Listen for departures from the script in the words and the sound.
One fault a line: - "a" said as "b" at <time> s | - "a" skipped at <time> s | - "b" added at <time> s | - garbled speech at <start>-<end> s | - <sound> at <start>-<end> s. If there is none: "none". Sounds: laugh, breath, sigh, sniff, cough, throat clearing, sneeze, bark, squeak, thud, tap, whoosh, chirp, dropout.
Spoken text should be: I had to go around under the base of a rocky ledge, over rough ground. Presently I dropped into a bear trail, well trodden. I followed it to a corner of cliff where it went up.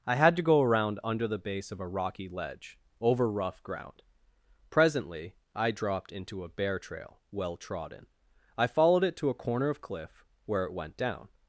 - "up" said as "down" at 11.0 s